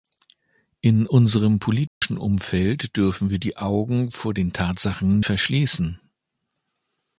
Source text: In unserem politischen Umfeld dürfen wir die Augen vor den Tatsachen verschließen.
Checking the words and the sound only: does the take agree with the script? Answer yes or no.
no